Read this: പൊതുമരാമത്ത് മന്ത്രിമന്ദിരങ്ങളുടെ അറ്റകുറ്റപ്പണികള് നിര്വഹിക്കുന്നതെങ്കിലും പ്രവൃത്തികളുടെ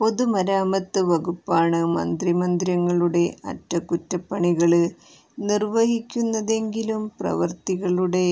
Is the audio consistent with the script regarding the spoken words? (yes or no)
no